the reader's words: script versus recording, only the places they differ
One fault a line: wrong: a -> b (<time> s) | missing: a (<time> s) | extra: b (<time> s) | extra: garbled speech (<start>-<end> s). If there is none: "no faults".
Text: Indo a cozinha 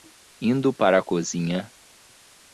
extra: para (0.7 s)